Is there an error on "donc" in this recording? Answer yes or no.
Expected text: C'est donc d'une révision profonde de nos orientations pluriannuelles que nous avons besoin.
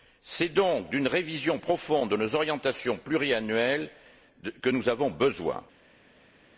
no